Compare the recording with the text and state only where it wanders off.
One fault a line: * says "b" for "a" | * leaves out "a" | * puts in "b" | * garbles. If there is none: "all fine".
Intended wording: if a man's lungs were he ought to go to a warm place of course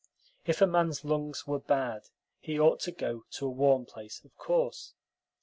* puts in "bad"